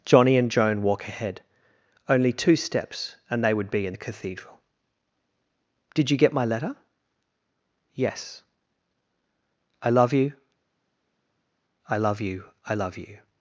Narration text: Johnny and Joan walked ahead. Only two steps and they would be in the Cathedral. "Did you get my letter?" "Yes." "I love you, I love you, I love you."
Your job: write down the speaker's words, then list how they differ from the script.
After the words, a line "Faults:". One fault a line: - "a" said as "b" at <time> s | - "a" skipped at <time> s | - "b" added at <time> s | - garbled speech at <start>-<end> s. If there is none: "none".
Johnny and Joan walk ahead. Only two steps and they would be in the Cathedral. "Did you get my letter?" "Yes." "I love you, I love you, I love you."
Faults:
- "walked" said as "walk" at 0.8 s